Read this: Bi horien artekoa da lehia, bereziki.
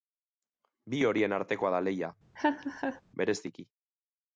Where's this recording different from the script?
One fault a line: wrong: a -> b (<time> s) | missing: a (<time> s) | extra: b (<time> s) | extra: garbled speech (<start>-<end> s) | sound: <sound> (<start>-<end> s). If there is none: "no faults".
sound: laugh (2.4-3.0 s)